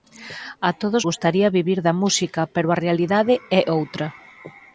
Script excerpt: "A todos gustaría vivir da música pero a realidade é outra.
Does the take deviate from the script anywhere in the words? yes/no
no